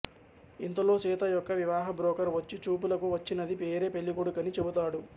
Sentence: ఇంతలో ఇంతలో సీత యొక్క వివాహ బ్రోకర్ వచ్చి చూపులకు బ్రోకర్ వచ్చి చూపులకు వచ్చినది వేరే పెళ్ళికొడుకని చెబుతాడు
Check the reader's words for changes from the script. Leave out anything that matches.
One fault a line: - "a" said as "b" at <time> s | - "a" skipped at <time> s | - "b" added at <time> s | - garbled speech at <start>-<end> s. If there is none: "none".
- "ఇంతలో" skipped at 0.9 s
- "బ్రోకర్ వచ్చి చూపులకు" skipped at 3.1 s